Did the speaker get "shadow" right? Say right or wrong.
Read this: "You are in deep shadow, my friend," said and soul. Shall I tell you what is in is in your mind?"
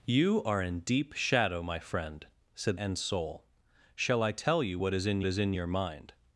right